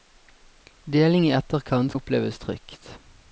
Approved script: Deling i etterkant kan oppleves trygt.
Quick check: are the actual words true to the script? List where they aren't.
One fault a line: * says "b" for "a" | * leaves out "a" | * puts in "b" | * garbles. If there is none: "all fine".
* leaves out "kan"